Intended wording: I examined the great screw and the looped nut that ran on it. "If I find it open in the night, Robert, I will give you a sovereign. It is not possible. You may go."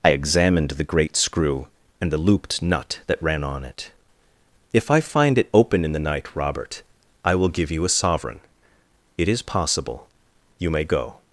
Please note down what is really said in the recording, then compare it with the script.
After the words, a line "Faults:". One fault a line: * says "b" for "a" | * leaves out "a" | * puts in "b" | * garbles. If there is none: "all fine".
I examined the great screw and the looped nut that ran on it. "If I find it open in the night, Robert, I will give you a sovereign. It is possible. You may go."
Faults:
* leaves out "not"